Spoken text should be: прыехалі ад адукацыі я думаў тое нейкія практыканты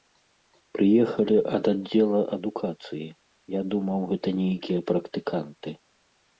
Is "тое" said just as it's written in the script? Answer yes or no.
no